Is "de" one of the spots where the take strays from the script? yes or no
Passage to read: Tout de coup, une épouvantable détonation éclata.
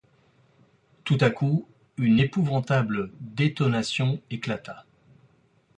yes